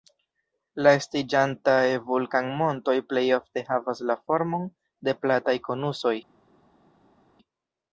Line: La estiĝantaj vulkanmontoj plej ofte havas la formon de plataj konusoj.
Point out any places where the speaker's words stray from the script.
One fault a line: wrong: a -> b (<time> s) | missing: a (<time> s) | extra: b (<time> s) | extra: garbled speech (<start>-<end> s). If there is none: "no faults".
no faults